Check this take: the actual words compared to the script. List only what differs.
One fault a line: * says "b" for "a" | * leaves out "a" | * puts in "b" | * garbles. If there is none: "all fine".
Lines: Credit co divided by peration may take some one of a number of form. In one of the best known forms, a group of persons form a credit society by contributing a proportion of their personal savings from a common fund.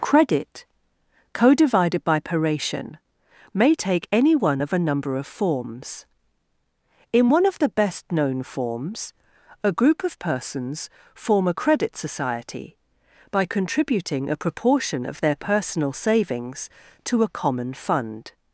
* says "any" for "some"
* says "forms" for "form"
* says "to" for "from"